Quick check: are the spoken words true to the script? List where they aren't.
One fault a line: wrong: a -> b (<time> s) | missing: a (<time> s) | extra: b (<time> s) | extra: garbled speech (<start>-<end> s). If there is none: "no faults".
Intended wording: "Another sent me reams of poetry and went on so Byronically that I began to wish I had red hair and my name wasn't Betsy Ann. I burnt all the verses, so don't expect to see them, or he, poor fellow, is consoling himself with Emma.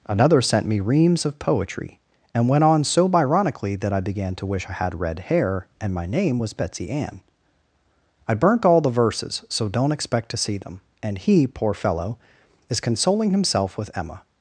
wrong: wasn't -> was (6.4 s)
wrong: or -> and (11.0 s)